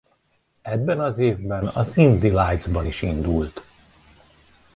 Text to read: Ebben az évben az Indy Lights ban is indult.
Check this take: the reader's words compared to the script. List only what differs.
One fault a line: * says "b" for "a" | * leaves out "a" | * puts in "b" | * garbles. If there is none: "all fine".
all fine